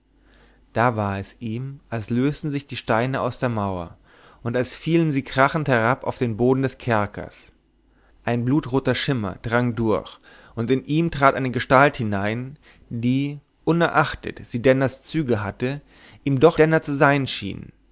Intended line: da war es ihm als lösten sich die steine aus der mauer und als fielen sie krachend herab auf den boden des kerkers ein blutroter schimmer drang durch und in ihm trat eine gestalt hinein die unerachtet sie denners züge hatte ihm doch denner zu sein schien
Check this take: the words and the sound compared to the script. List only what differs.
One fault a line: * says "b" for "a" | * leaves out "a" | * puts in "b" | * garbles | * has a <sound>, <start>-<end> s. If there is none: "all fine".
all fine